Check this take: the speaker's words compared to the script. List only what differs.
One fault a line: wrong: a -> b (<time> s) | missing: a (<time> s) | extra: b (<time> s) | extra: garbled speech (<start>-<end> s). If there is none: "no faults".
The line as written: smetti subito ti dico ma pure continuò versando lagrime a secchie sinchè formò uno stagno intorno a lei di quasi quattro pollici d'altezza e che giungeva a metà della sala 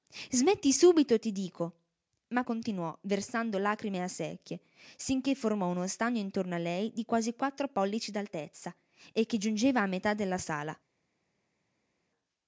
missing: pure (2.4 s)